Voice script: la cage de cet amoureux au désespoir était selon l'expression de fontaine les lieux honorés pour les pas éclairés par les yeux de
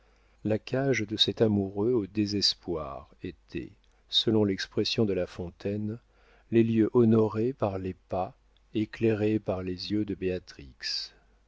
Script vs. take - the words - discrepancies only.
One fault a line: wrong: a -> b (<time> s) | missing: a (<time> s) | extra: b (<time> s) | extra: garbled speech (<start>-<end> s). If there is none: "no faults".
extra: la (5.1 s)
wrong: pour -> par (7.5 s)